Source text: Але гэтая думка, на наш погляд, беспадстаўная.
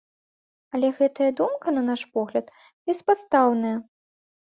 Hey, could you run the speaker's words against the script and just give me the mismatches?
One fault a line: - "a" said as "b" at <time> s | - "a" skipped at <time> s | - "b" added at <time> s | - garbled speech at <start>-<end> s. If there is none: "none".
none